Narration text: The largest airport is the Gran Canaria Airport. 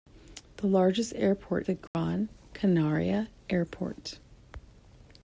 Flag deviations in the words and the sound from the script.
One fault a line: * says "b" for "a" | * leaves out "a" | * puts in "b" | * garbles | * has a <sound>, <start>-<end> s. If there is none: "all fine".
* leaves out "is"
* has a dropout, 1.9-1.9 s